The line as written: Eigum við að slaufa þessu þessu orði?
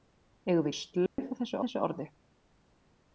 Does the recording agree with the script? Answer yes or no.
yes